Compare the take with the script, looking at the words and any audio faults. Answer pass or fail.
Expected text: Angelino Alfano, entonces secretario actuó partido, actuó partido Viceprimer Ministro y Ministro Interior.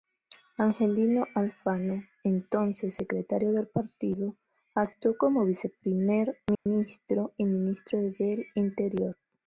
fail